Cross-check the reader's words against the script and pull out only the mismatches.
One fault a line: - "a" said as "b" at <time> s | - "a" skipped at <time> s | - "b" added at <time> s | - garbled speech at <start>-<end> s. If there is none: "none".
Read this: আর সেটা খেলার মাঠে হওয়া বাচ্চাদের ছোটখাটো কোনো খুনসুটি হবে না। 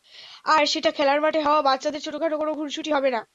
none